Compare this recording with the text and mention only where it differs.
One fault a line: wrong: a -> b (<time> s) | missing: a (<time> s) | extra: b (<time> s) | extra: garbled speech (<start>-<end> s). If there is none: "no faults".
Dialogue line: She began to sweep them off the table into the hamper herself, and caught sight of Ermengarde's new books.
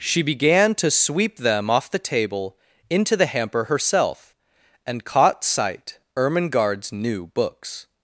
missing: of (6.0 s)